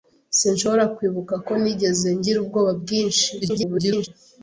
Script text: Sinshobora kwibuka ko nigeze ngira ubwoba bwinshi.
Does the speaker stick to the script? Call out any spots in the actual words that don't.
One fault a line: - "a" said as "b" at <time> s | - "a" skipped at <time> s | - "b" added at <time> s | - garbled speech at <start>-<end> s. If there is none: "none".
- garbled speech at 3.4-4.1 s